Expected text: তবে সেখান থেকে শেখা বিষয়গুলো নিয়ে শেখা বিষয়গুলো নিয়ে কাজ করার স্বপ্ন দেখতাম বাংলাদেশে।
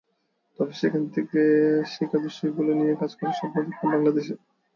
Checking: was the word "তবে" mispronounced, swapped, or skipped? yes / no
no